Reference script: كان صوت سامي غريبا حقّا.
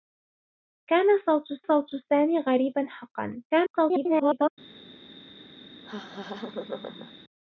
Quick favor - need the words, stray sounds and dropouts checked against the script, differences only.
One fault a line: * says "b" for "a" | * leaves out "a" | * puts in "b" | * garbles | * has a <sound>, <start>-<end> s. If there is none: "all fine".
* puts in "صوت"
* garbles
* has a laugh, 5.8-7.1 s